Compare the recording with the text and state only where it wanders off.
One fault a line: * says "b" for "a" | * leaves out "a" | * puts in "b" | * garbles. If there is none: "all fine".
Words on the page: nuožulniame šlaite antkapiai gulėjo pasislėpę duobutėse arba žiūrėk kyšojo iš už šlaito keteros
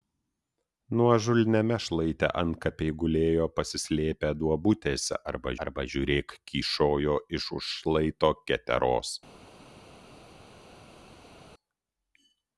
* puts in "arba"